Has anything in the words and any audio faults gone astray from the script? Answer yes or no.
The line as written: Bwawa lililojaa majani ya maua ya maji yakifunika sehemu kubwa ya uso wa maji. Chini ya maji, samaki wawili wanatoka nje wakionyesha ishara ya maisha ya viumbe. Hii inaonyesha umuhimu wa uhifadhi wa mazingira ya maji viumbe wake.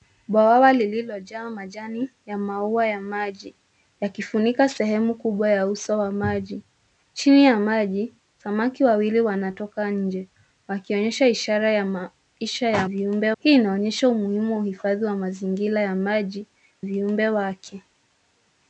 no